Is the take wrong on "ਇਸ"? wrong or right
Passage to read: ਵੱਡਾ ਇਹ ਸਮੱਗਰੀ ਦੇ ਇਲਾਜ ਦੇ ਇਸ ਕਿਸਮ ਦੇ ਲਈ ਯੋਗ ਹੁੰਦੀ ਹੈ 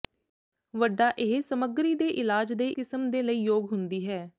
wrong